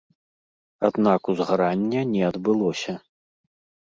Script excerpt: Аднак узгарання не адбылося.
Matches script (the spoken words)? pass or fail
pass